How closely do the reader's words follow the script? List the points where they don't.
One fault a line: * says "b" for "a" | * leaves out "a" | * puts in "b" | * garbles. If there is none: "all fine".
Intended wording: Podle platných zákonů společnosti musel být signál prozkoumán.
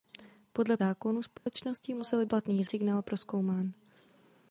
* leaves out "platných"
* says "platných" for "být"